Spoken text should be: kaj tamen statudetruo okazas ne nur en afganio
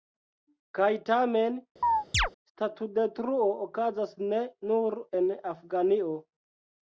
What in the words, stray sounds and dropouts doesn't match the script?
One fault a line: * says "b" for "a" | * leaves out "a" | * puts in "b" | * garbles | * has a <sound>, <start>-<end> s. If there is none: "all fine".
* has a chirp, 1.8-2.3 s